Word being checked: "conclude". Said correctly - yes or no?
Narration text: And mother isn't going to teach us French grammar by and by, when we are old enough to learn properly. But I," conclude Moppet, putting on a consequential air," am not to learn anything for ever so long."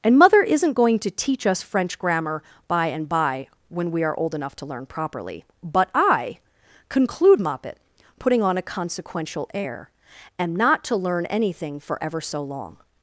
yes